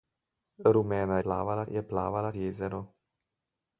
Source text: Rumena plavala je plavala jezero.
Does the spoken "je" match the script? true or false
true